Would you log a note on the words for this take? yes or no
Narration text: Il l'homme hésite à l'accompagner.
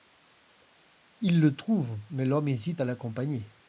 yes